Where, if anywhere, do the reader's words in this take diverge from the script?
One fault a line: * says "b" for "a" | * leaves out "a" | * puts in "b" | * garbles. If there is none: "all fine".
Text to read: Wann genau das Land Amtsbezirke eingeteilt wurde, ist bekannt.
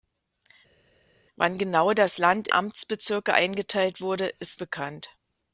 all fine